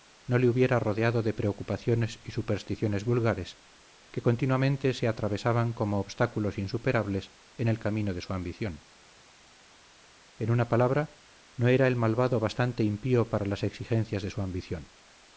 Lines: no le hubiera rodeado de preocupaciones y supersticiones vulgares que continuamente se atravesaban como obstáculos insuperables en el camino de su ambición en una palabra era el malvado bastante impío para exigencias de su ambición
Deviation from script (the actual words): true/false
true